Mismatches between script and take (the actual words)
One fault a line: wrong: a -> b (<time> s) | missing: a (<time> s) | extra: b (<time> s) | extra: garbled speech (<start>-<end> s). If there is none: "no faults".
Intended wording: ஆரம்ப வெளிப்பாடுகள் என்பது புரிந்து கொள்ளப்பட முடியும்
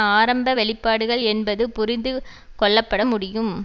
no faults